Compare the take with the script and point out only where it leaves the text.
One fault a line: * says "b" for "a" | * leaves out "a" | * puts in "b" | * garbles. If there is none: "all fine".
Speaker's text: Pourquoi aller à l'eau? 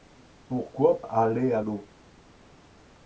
all fine